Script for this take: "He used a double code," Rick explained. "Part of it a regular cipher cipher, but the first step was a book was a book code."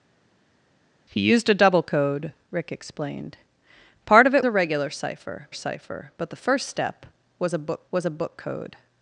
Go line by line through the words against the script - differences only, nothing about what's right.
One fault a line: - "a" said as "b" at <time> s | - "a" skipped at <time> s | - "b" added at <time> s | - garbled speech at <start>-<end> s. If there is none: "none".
none